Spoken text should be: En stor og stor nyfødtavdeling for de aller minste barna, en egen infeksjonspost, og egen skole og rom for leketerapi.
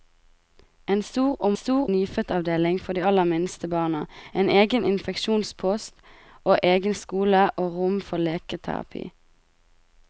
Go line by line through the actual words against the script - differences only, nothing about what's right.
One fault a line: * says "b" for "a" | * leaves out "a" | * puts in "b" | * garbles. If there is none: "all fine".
all fine